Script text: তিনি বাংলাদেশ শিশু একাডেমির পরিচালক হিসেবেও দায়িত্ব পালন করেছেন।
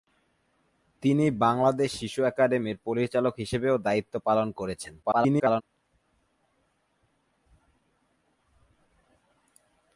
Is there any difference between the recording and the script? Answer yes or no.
yes